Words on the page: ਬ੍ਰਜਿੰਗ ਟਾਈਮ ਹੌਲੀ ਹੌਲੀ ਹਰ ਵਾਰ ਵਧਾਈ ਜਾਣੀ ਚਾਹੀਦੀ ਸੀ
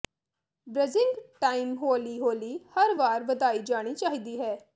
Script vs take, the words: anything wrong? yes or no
yes